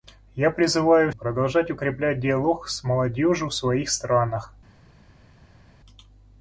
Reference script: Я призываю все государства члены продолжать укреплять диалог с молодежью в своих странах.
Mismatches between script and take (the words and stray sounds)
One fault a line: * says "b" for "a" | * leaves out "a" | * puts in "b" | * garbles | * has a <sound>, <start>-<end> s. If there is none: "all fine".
* leaves out "все государства члены"